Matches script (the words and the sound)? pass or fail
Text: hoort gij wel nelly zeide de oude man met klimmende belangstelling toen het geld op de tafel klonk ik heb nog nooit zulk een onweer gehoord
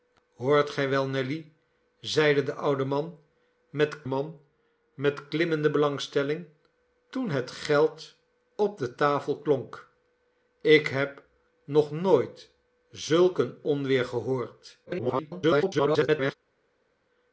fail